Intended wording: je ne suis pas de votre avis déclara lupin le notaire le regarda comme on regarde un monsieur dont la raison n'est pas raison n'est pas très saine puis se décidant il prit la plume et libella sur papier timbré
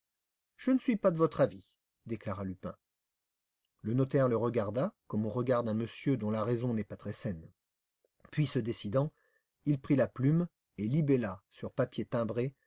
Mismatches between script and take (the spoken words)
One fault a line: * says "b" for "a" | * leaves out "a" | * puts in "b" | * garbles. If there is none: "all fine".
* leaves out "raison n'est pas"